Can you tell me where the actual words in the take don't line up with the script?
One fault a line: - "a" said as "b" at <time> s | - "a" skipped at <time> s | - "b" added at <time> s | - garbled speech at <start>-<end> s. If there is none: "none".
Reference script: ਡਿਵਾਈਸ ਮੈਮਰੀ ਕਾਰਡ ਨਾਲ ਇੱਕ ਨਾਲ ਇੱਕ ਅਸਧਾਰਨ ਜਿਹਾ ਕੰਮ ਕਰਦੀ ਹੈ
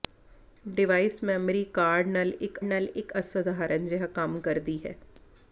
none